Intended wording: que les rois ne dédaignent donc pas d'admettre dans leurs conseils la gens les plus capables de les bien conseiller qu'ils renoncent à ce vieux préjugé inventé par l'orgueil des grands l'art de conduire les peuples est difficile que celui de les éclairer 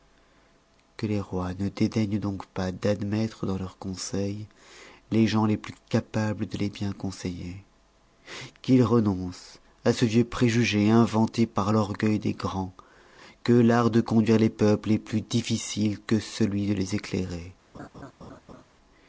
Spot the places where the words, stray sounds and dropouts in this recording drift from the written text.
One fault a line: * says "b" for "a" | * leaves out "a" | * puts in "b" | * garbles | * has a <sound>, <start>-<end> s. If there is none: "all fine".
* says "les" for "la"
* puts in "que"
* puts in "plus"
* has a laugh, 17.7-18.6 s